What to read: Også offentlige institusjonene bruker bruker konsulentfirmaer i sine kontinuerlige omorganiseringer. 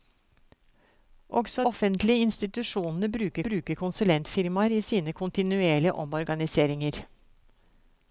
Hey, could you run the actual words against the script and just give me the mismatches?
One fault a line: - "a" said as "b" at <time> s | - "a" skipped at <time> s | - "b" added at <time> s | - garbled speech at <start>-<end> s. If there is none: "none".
none